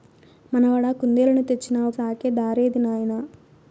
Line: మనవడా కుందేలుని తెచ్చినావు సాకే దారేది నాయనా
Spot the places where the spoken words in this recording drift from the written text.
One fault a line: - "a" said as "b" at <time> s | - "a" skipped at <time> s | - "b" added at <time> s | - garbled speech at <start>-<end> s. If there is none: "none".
none